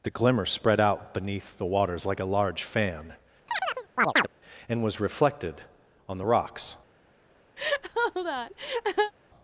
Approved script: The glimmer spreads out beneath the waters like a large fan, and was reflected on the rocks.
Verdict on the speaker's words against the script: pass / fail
fail